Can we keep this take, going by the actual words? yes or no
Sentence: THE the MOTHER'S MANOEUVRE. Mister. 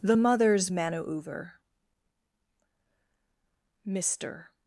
no